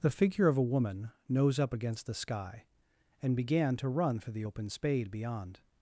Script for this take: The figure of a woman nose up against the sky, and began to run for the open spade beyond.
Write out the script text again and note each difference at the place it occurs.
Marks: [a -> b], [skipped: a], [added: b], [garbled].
The figure of a woman nose up against the sky, and began to run for the open spade beyond.